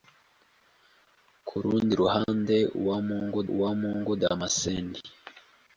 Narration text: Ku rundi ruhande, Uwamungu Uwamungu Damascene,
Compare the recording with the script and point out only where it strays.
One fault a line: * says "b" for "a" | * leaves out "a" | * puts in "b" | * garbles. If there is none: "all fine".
all fine